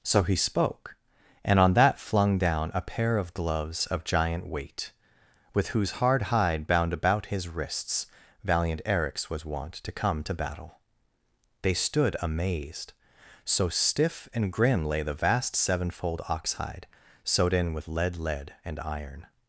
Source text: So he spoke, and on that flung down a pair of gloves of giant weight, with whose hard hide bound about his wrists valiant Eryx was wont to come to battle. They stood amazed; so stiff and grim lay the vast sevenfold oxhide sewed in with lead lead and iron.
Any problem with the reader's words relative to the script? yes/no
no